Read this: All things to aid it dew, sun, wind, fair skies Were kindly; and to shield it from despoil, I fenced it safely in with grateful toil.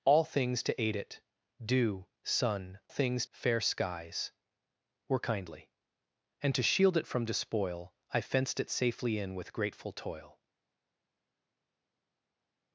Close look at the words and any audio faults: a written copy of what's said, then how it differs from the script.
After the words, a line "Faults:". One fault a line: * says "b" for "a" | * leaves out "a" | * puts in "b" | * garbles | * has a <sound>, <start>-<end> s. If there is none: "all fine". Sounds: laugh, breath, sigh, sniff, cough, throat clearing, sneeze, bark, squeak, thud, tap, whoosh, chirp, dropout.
All things to aid it dew, sun, things, fair skies Were kindly; and to shield it from despoil, I fenced it safely in with grateful toil.
Faults:
* says "things" for "wind"